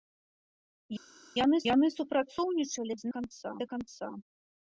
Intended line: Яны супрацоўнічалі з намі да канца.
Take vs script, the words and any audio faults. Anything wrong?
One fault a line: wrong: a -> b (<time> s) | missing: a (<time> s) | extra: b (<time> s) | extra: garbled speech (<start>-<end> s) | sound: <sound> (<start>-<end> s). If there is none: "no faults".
extra: яны (1.7 s)
wrong: намі -> канца (3.2 s)